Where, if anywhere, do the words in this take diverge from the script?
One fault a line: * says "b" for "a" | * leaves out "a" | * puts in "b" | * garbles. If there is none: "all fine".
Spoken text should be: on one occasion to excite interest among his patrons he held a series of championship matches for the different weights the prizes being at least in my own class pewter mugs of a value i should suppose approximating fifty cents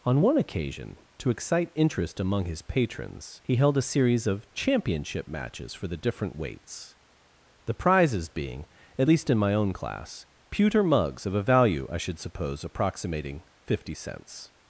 all fine